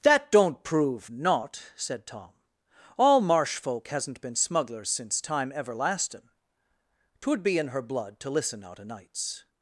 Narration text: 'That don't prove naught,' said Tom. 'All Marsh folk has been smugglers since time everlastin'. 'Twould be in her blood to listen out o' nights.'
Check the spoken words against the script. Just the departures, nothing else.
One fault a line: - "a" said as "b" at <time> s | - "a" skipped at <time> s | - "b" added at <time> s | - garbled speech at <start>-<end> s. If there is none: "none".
- "has" said as "hasn't" at 3.9 s